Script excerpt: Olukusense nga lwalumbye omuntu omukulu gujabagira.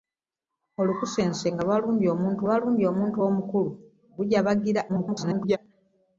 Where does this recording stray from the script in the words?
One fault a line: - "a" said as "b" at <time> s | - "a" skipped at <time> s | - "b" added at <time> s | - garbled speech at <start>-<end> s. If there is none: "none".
- "lwalumbye omuntu" added at 2.4 s
- garbled speech at 4.9-5.6 s